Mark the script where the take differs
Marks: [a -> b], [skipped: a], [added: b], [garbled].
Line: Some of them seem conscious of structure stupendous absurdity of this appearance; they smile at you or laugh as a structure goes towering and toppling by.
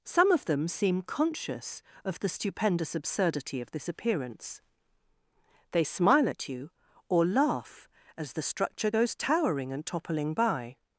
Some of them seem conscious of [structure -> the] stupendous absurdity of this appearance; they smile at you or laugh as [a -> the] structure goes towering and toppling by.